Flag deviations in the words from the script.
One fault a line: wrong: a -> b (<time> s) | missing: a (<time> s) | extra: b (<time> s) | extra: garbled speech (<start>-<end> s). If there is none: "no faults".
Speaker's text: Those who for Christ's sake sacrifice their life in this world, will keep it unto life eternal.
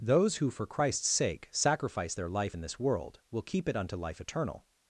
no faults